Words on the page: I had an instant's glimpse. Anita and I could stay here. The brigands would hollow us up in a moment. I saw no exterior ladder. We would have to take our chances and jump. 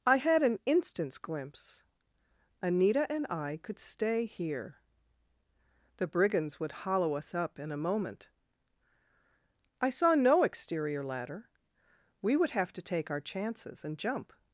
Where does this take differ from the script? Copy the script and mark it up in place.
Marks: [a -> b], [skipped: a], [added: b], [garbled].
I had an instant's glimpse. Anita and I could stay here. The brigands would hollow us up in a moment. I saw no exterior ladder. We would have to take our chances and jump.